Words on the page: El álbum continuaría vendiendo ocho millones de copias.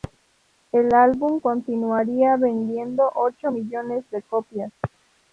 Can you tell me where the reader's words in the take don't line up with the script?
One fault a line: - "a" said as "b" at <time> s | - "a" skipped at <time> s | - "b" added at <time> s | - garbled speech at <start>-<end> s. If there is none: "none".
none